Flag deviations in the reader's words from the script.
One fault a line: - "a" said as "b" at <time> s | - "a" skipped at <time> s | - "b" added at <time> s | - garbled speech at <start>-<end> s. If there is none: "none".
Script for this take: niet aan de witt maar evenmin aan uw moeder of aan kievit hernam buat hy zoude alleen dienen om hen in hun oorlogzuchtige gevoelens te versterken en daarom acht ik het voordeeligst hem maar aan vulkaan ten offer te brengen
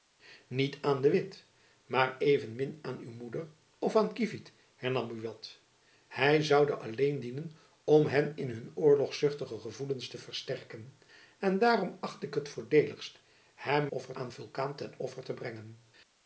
- "maar" said as "offer" at 13.9 s